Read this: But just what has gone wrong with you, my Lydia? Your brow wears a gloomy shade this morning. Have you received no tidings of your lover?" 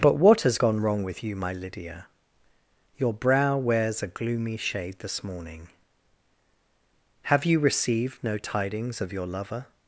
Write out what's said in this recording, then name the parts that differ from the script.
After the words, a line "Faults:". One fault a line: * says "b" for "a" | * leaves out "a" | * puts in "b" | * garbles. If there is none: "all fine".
But what has gone wrong with you, my Lydia? Your brow wears a gloomy shade this morning. Have you received no tidings of your lover?"
Faults:
* leaves out "just"